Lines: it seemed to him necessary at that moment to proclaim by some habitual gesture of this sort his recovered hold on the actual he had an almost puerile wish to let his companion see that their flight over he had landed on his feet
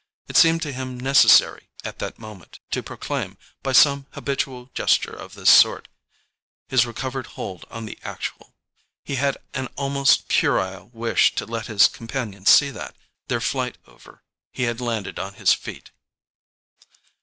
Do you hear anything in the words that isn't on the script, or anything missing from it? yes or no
no